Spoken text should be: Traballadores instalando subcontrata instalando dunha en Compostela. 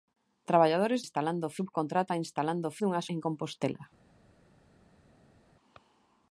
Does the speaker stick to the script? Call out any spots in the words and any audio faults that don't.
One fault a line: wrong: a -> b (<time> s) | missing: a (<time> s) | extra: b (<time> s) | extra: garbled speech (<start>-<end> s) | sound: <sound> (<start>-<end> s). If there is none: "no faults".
no faults